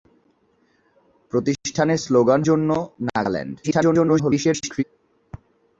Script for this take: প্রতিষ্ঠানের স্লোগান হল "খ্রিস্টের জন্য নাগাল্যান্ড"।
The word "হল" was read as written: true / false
false